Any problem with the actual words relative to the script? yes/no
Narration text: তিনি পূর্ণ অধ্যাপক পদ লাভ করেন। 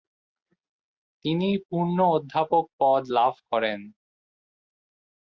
no